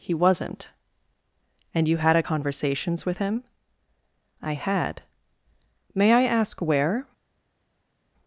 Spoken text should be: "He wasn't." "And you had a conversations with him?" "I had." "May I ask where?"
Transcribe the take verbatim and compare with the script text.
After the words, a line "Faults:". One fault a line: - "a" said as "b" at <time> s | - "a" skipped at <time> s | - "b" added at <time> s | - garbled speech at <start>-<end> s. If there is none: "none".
"He wasn't." "And you had a conversations with him?" "I had." "May I ask where?"
Faults:
none